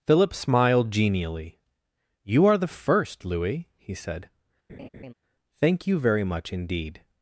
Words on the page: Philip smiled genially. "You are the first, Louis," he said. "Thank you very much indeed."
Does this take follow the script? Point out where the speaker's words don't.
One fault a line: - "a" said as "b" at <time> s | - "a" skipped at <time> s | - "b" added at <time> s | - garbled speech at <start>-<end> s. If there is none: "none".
none